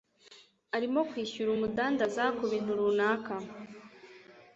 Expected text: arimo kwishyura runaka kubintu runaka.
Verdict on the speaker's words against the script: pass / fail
fail